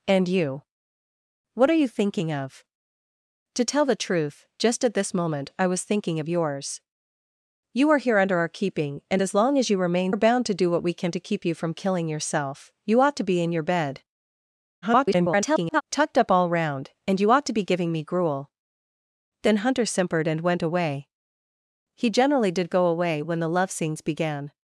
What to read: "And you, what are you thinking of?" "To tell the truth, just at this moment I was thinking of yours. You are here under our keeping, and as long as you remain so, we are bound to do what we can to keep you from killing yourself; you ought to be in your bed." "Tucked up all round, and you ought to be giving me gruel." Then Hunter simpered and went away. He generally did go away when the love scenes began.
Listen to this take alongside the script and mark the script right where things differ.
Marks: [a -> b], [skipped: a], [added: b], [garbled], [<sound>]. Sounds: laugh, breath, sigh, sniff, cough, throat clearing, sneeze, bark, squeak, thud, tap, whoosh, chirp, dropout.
"And you, what are you thinking of?" "To tell the truth, just at this moment I was thinking of yours. You are here under our keeping, and as long as you remain [skipped: so, we] are bound to do what we can to keep you from killing yourself; you ought to be in your bed." [garbled] "Tucked up all round, and you ought to be giving me gruel." Then Hunter simpered and went away. He generally did go away when the love scenes began.